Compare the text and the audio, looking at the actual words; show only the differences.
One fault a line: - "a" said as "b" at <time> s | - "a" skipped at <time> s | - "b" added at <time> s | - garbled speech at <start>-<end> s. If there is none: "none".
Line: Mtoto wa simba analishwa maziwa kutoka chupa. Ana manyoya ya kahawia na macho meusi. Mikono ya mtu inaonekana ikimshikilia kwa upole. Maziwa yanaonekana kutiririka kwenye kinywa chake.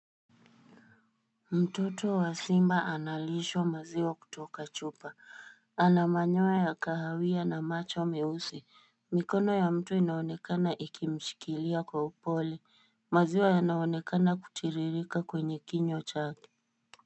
none